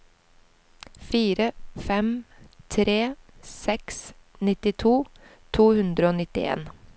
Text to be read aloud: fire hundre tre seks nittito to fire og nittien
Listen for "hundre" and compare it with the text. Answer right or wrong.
wrong